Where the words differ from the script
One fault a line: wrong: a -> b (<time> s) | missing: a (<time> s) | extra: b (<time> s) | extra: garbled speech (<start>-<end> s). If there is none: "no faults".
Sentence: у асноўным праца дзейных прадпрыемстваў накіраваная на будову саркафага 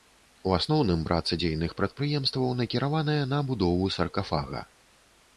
no faults